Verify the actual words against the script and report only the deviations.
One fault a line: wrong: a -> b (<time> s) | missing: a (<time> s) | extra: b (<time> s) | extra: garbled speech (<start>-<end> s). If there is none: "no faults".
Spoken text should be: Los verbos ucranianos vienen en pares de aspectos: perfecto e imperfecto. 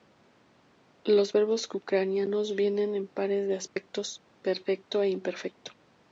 no faults